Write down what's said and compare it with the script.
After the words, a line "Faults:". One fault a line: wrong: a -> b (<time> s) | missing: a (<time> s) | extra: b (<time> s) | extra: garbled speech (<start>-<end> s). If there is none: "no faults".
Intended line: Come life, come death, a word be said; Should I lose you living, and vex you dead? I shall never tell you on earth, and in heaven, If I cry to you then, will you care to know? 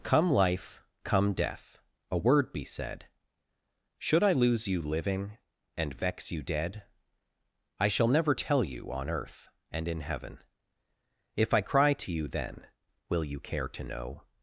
Come life, come death, a word be said; Should I lose you living, and vex you dead? I shall never tell you on earth, and in heaven, If I cry to you then, will you care to know?
Faults:
no faults